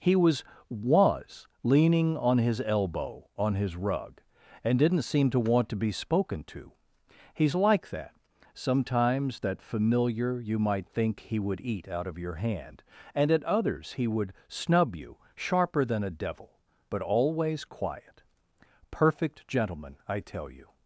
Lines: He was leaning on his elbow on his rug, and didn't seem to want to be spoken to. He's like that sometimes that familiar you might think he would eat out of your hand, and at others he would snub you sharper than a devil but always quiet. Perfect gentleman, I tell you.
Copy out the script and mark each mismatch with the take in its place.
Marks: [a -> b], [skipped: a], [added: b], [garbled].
He was [added: was] leaning on his elbow on his rug, and didn't seem to want to be spoken to. He's like that sometimes that familiar you might think he would eat out of your hand, and at others he would snub you sharper than a devil but always quiet. Perfect gentleman, I tell you.